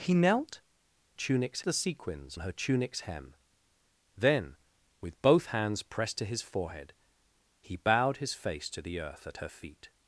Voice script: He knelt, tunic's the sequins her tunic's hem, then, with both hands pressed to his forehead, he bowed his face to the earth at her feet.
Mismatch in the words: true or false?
false